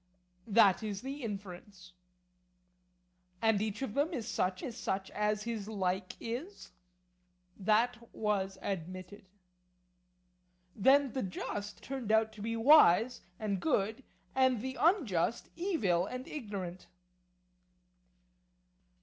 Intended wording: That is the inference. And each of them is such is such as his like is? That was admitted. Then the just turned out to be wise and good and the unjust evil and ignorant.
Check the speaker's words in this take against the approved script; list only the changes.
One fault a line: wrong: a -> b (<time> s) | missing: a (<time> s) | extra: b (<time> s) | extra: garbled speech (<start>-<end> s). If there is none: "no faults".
no faults